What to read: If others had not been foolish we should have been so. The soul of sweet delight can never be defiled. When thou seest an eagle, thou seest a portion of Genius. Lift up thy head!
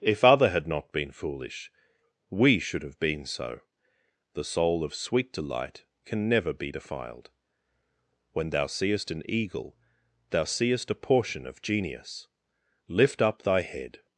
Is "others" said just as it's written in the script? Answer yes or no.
no